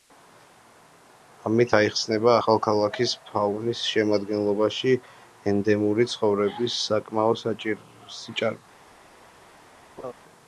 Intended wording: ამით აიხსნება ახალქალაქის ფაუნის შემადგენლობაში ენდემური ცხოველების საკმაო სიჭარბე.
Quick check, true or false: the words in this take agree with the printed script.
true